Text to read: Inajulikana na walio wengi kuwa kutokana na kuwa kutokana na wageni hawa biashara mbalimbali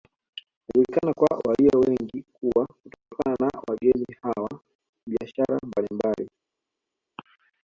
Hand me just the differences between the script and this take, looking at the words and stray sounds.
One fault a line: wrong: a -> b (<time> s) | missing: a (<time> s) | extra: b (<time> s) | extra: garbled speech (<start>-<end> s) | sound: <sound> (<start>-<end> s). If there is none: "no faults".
wrong: na -> kwa (1.1 s)
missing: kuwa kutokana na (3.6 s)